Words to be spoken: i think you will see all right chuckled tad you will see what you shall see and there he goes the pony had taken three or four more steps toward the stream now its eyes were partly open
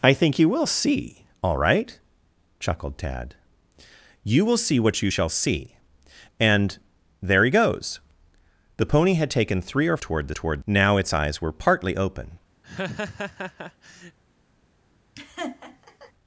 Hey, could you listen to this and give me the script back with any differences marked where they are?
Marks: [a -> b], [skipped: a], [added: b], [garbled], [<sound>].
i think you will see all right chuckled tad you will see what you shall see and there he goes the pony had taken three or [skipped: four more steps] toward the [stream -> toward] now its eyes were partly open [laugh] [laugh]